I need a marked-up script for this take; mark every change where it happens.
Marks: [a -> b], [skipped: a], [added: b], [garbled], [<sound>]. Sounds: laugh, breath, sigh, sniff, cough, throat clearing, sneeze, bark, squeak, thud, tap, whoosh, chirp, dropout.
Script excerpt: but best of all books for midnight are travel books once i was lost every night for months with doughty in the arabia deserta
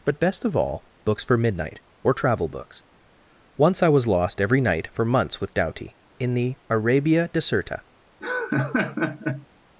but best of all books for midnight [are -> or] travel books once i was lost every night for months with doughty in the arabia deserta [laugh]